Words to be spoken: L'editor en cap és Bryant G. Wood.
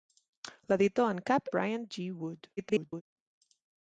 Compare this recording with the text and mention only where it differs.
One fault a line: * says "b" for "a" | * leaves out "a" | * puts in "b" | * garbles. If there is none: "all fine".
* leaves out "és"
* garbles